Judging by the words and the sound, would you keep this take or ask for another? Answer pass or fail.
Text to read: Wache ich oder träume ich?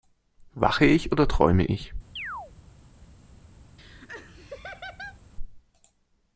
fail